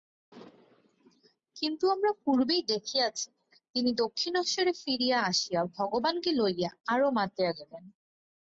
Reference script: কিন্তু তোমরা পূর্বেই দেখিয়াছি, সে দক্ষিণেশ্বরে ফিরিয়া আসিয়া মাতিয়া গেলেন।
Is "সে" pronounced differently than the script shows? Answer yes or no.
yes